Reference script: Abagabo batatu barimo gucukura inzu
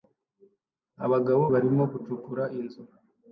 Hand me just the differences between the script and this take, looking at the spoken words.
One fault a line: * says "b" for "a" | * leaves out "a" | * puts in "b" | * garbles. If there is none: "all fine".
* leaves out "batatu"